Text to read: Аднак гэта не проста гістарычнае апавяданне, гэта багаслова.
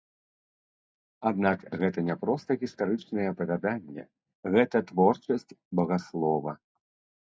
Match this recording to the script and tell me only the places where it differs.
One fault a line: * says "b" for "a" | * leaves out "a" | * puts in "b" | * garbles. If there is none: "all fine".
* puts in "творчасць"